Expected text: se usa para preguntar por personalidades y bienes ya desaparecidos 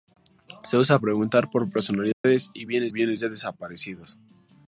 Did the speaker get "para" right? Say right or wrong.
wrong